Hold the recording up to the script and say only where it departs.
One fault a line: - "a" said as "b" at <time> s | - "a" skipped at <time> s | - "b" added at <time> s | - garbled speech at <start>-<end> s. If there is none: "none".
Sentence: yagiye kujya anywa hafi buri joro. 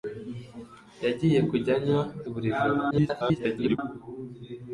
- "hafi" skipped at 2.0 s
- garbled speech at 2.9-3.8 s